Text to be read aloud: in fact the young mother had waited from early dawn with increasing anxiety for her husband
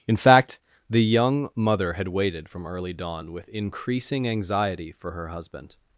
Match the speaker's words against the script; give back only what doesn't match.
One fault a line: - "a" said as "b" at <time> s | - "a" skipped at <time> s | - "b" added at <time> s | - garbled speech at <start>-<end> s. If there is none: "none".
none